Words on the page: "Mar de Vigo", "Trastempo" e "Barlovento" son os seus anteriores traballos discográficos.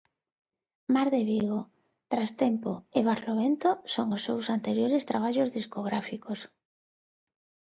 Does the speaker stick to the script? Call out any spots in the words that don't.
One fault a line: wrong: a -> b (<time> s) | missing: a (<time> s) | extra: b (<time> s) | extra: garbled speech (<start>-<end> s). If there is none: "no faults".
no faults